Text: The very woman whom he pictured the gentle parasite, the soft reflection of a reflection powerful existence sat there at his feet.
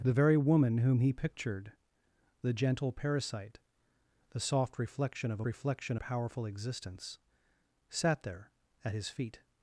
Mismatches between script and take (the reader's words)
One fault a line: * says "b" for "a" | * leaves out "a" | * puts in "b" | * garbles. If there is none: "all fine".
all fine